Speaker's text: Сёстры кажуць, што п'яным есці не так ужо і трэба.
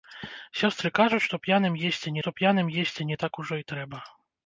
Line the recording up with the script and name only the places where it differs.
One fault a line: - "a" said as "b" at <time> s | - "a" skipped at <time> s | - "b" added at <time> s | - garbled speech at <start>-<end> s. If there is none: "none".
- "што п'яным есці" added at 2.2 s